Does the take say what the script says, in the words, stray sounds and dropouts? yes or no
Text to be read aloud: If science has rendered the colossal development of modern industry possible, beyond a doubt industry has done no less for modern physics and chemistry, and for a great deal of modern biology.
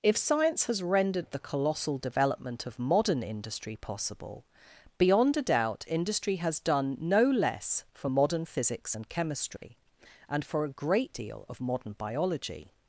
no